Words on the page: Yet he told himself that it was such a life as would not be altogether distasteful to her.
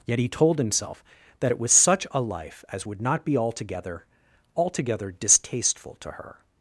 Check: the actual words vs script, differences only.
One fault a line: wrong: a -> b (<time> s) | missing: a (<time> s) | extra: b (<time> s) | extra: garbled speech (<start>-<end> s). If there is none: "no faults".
extra: altogether (4.5 s)